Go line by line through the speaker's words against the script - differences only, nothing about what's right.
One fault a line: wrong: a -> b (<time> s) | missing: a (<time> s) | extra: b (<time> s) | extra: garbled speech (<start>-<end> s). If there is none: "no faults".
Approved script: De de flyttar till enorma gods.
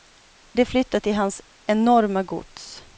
missing: de (0.7 s)
extra: hans (1.2 s)